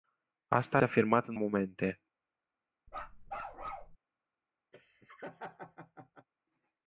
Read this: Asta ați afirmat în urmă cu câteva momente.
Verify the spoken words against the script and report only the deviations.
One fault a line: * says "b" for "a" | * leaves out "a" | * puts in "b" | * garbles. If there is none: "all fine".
* leaves out "ați"
* leaves out "urmă cu câteva"